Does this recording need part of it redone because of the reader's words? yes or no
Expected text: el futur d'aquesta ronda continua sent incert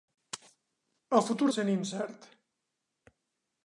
yes